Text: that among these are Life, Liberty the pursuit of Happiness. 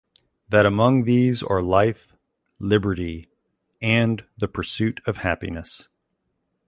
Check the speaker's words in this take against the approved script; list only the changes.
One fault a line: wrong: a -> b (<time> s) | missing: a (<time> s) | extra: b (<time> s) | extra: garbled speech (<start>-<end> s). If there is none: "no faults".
extra: and (3.8 s)